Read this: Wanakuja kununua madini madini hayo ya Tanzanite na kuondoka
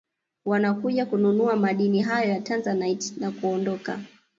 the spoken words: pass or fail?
fail